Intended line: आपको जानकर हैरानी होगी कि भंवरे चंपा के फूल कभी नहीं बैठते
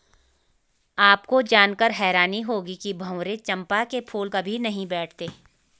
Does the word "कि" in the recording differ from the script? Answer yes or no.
no